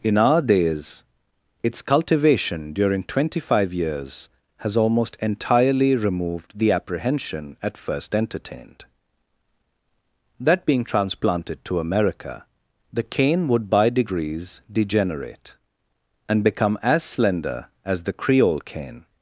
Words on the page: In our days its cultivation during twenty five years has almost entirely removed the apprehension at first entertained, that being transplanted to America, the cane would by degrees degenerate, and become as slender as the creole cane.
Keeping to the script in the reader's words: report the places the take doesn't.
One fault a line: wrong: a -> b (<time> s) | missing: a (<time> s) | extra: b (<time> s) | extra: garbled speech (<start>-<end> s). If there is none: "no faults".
no faults